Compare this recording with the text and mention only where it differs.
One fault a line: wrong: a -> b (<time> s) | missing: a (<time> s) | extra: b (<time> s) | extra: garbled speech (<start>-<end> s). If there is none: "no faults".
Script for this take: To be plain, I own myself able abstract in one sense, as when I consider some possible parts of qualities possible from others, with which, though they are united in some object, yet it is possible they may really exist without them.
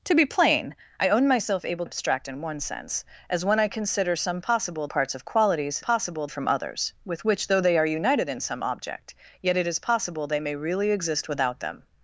no faults